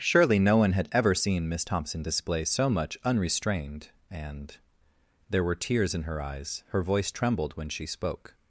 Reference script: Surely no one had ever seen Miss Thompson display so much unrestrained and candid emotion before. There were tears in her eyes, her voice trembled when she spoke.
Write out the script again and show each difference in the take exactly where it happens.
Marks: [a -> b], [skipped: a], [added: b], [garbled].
Surely no one had ever seen Miss Thompson display so much unrestrained and [skipped: candid emotion before.] There were tears in her eyes, her voice trembled when she spoke.